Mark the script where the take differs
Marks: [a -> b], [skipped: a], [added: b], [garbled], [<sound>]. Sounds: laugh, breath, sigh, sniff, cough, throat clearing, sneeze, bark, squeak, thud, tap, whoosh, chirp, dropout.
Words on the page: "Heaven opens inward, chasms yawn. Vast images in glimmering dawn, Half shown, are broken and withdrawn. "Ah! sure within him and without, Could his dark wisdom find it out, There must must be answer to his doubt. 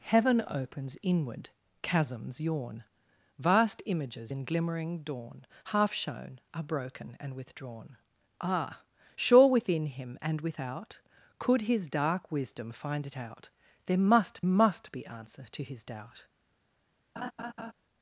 "Heaven opens inward, chasms yawn. Vast images in glimmering dawn, Half shown, are broken and withdrawn. "Ah! sure within him and without, Could his dark wisdom find it out, There must must be answer to his doubt. [laugh]